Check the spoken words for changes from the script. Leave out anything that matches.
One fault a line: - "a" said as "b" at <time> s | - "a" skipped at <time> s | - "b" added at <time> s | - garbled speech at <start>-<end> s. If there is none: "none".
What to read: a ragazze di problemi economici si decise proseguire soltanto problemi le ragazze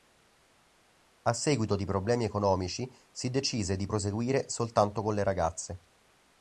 - "ragazze" said as "seguito" at 1.3 s
- "di" added at 3.8 s
- "problemi" said as "con" at 5.0 s